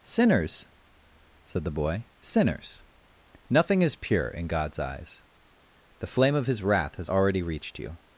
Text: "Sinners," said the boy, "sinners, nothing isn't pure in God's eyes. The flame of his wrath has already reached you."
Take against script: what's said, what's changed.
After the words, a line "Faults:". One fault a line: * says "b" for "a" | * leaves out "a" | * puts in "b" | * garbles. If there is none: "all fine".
"Sinners," said the boy, "sinners, nothing is pure in God's eyes. The flame of his wrath has already reached you."
Faults:
* says "is" for "isn't"